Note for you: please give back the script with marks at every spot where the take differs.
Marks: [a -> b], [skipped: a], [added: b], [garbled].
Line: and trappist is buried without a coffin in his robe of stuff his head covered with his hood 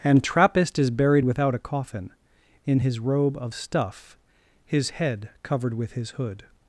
and trappist is buried without a coffin in his robe of stuff his head covered with his hood